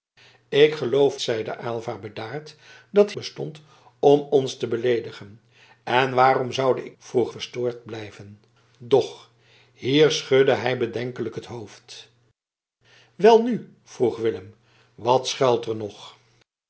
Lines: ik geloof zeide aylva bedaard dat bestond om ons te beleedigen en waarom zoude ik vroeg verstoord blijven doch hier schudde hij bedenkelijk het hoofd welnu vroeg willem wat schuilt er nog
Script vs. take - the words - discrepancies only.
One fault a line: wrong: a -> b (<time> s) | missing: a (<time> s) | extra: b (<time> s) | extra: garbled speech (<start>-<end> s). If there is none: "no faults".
no faults